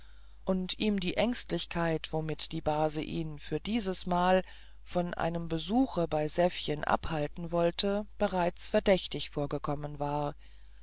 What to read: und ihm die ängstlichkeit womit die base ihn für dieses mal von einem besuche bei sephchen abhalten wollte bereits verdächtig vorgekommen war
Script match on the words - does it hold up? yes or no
yes